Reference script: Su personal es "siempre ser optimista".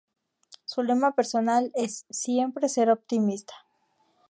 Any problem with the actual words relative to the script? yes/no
yes